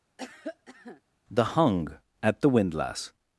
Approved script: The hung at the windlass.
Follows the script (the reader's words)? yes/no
yes